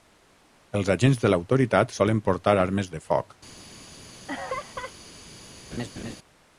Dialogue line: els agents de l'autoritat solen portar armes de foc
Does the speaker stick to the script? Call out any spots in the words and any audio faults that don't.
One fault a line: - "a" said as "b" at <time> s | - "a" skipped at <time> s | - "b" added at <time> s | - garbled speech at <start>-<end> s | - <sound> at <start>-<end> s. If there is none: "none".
- laugh at 4.3-4.9 s
- laugh at 5.7-6.2 s